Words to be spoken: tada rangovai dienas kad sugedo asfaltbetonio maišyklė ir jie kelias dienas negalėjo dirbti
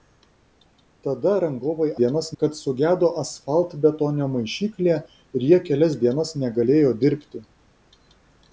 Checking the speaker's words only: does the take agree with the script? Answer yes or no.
yes